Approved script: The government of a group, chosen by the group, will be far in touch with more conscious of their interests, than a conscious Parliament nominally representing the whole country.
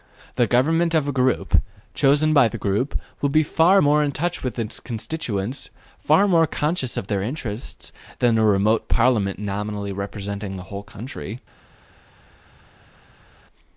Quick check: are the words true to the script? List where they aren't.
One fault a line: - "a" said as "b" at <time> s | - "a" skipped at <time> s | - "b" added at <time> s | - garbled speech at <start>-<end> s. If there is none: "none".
- "more" added at 3.8 s
- "its constituents far" added at 4.6 s
- "conscious" said as "remote" at 8.4 s